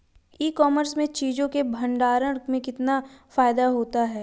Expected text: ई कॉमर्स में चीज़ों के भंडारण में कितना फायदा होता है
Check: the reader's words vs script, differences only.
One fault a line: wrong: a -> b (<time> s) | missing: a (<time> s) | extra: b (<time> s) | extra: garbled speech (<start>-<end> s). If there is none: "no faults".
no faults